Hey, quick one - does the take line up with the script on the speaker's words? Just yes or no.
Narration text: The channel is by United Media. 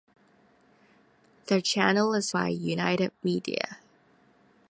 yes